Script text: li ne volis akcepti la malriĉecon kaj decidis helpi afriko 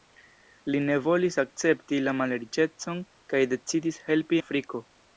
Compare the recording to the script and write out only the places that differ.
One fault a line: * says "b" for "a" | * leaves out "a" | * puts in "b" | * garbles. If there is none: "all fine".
all fine